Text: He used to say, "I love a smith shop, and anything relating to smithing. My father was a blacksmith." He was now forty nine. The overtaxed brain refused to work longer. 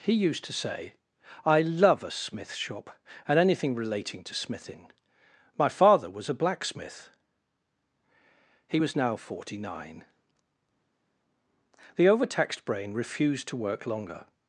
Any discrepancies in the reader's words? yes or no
no